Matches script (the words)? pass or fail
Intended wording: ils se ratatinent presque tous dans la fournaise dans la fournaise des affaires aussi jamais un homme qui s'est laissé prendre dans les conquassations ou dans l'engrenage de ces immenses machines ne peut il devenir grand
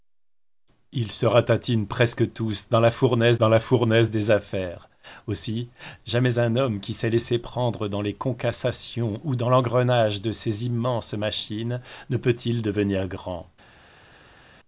pass